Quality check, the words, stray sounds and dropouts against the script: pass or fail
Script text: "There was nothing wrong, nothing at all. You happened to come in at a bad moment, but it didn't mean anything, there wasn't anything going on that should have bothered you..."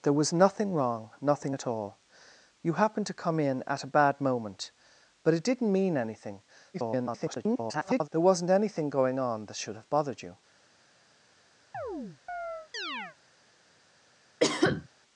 fail